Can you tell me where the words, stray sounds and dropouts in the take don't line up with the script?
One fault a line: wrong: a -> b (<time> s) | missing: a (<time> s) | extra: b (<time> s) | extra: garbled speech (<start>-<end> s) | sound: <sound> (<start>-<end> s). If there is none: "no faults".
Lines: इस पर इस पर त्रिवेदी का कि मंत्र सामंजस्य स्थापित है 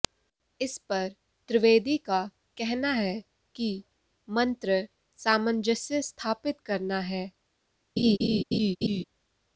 wrong: इस पर त्रिवेदी का -> त्रिवेदी का कहना है (1.5 s)
extra: करना (6.7 s)
sound: laugh (8.0-9.0 s)